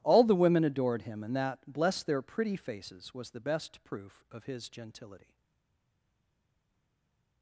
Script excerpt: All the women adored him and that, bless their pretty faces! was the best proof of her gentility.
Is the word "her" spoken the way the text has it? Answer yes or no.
no